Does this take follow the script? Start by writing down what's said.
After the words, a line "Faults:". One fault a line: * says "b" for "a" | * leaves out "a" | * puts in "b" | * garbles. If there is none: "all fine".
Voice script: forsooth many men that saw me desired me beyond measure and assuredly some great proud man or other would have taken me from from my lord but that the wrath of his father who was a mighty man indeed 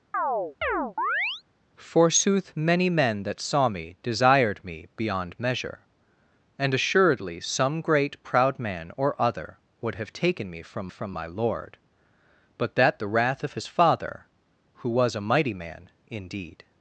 forsooth many men that saw me desired me beyond measure and assuredly some great proud man or other would have taken me from from my lord but that the wrath of his father who was a mighty man indeed
Faults:
all fine